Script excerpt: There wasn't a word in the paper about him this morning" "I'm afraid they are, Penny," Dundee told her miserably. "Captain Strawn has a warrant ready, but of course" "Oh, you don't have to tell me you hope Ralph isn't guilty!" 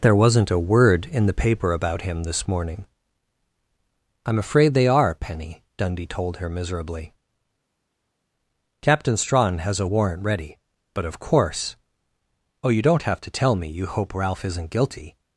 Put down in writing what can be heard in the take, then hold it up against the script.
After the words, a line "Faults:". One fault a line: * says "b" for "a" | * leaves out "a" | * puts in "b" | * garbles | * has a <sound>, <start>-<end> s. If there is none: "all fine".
There wasn't a word in the paper about him this morning" "I'm afraid they are, Penny," Dundee told her miserably. "Captain Strawn has a warrant ready, but of course" "Oh, you don't have to tell me you hope Ralph isn't guilty!"
Faults:
all fine